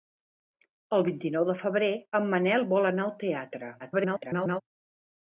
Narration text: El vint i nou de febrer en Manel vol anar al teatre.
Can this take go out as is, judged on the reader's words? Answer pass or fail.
fail